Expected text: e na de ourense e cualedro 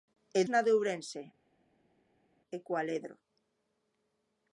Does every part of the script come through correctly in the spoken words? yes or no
yes